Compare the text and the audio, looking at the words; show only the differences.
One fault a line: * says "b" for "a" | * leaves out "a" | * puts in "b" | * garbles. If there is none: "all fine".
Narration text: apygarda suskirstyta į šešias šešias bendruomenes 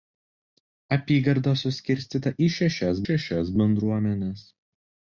all fine